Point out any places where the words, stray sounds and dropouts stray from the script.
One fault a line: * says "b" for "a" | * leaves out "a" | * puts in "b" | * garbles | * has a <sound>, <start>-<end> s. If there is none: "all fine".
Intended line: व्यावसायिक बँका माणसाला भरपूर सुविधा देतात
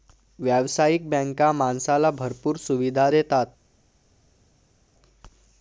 all fine